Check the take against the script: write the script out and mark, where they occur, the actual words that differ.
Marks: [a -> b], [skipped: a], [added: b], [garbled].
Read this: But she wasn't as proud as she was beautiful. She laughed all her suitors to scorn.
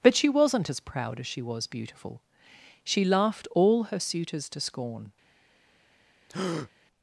But she wasn't as proud as she was beautiful. She laughed all her suitors to scorn.